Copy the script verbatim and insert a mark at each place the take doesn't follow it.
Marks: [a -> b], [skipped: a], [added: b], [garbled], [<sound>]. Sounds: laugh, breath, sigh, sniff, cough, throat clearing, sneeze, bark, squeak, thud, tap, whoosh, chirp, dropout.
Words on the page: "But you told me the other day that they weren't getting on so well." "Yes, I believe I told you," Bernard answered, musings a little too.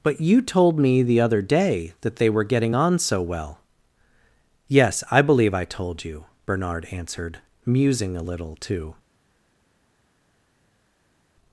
"But you told me the other day that they [weren't -> were] getting on so well." "Yes, I believe I told you," Bernard answered, [musings -> musing] a little too.